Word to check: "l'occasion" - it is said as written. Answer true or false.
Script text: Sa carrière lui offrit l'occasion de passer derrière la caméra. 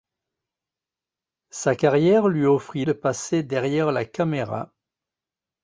false